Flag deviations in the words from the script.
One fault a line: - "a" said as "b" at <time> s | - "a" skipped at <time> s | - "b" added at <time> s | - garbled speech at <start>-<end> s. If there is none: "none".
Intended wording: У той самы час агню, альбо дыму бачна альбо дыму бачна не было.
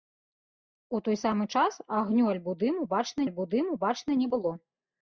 none